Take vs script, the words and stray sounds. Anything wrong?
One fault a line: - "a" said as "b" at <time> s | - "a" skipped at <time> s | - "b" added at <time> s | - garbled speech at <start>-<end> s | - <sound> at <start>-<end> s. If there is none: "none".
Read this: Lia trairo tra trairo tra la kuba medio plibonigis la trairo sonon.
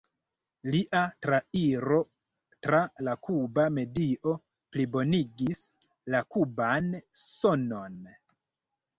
- "trairo tra" skipped at 2.8 s
- "trairo" said as "kuban" at 6.4 s